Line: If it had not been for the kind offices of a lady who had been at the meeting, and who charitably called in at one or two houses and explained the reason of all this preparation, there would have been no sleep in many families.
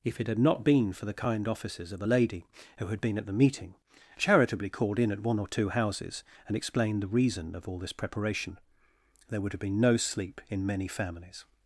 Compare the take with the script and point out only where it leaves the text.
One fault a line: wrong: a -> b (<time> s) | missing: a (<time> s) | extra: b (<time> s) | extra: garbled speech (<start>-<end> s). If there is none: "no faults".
missing: and who (3.7 s)